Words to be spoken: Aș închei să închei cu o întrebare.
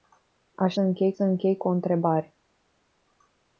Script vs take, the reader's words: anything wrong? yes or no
no